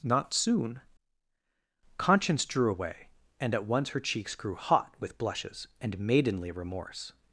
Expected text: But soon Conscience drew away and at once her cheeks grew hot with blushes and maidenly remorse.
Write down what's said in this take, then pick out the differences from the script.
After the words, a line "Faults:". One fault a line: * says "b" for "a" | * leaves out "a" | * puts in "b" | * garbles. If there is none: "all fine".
Not soon Conscience drew away and at once her cheeks grew hot with blushes and maidenly remorse.
Faults:
* says "Not" for "But"